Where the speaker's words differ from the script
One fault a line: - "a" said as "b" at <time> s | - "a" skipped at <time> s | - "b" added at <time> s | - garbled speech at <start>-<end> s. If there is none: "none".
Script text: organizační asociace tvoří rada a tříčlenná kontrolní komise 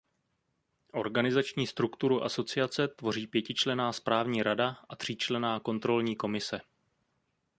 - "strukturu" added at 1.7 s
- "pětičlenná správní" added at 3.3 s